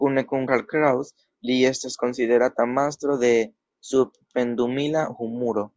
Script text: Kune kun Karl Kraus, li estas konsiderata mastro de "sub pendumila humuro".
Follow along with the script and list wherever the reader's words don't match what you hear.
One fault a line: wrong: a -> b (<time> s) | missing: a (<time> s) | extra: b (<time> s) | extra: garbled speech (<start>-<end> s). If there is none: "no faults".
no faults